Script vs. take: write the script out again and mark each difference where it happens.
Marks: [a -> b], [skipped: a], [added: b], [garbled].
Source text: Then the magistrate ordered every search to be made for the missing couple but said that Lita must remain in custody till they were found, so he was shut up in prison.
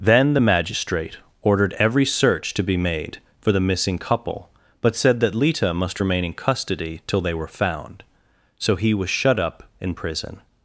Then the magistrate ordered every search to be made for the missing couple but said that Lita must remain in custody till they were found, so he was shut up in prison.